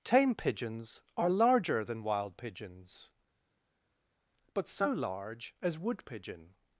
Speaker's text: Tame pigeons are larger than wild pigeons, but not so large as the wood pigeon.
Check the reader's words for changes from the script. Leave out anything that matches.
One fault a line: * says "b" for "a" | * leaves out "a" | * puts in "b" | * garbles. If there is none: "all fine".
* leaves out "not"
* leaves out "the"